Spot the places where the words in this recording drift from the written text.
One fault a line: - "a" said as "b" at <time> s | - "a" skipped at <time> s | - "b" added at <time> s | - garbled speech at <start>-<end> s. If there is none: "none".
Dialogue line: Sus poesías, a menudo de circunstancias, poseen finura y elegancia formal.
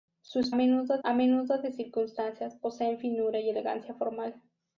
- "poesías" said as "menudo" at 0.5 s